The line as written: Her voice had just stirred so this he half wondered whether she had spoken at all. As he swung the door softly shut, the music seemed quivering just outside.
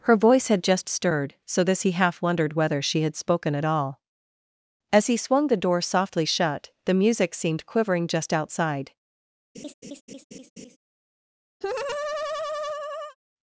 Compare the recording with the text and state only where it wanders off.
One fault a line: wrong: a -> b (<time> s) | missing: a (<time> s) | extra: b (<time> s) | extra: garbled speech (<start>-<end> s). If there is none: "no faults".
no faults